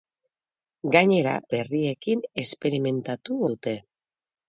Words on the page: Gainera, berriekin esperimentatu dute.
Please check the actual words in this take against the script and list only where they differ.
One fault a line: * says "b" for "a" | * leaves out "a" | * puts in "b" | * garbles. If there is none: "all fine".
all fine